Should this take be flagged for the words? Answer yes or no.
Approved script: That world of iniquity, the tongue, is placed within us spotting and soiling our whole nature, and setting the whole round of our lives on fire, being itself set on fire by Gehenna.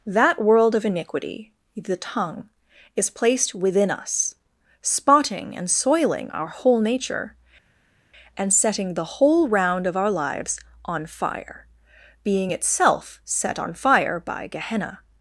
no